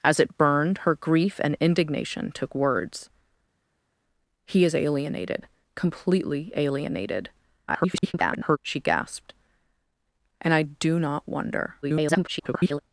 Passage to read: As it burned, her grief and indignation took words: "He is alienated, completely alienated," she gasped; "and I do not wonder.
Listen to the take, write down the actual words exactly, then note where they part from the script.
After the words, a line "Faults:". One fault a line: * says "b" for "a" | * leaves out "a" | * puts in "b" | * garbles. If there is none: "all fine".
As it burned, her grief and indignation took words: "He is alienated, completely alienated," [garbled] she gasped; "and I do not wonder. [garbled]
Faults:
* garbles
* garbles